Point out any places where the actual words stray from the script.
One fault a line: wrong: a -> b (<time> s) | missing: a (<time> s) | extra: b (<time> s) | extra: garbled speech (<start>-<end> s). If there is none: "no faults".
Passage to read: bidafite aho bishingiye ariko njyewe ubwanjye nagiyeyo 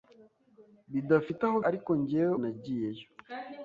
missing: bishingiye (1.6 s)
missing: ubwanjye (2.3 s)